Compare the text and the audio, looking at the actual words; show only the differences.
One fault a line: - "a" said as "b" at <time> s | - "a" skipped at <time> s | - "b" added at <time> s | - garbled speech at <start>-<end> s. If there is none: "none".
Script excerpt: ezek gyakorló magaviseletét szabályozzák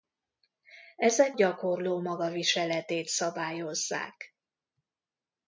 none